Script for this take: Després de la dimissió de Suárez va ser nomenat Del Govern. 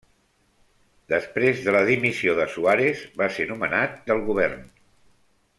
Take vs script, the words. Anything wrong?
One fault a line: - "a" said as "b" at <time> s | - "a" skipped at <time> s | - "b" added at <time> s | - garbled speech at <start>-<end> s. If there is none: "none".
none